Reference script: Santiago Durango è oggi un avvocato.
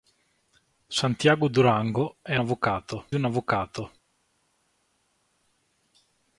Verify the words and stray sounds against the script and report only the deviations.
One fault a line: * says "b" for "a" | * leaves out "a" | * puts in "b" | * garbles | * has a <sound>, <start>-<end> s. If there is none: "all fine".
* says "avvocato" for "oggi"